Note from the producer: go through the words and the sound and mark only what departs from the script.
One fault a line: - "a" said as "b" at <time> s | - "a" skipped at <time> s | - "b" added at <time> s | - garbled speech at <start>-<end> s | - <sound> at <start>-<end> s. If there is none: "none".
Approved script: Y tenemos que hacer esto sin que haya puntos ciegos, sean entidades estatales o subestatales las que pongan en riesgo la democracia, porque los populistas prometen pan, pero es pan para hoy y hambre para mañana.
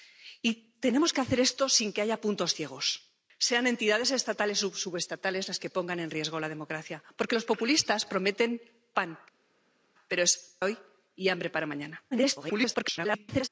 - "pan para" skipped at 10.6 s
- garbled speech at 12.1-13.5 s